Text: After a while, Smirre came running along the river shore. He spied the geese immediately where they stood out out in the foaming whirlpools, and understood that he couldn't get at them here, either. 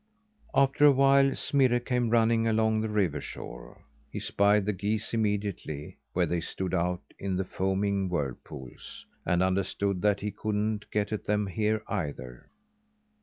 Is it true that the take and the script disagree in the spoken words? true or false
true